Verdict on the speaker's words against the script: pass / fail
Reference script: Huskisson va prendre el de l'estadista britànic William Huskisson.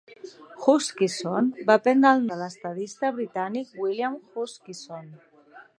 pass